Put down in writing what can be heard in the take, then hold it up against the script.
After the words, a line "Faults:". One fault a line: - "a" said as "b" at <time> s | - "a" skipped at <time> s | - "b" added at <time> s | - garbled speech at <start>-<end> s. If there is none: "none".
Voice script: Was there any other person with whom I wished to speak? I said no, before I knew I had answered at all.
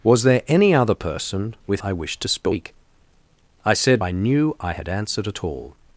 Was there any other person with I wished to speak? I said I knew I had answered at all.
Faults:
- "whom" skipped at 1.8 s
- "no before" skipped at 4.0 s